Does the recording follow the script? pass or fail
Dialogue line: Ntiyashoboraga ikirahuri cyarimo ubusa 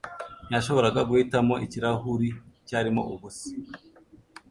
fail